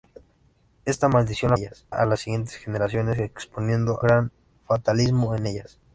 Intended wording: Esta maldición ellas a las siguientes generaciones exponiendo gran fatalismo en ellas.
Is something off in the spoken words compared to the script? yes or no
no